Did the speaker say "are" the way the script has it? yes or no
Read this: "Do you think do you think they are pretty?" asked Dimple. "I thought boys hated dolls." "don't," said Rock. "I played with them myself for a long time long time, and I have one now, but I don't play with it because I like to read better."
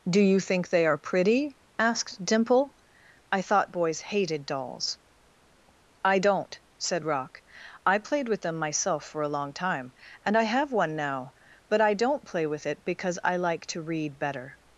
yes